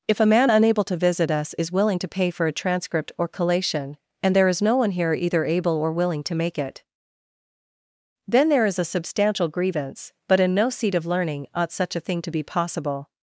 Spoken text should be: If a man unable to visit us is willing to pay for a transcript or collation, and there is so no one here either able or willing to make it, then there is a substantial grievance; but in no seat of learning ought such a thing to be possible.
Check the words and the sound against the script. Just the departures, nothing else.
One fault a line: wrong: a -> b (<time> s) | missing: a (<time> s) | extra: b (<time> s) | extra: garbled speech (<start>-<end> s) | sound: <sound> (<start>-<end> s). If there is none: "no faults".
missing: so (4.6 s)